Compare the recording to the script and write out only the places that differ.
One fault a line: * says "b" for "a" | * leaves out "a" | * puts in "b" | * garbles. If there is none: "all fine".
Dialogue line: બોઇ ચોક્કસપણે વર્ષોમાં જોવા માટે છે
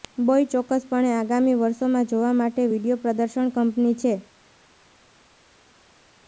* puts in "આગામી"
* puts in "વિડિઓ પ્રદર્શન કંપની"